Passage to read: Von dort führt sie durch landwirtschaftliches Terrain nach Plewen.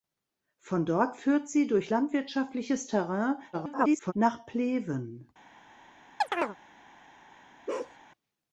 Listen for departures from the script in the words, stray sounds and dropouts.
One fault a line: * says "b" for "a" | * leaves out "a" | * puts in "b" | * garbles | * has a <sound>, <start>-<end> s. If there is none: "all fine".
* garbles
* has a chirp, 6.2-6.6 s
* has a bark, 7.7-8.0 s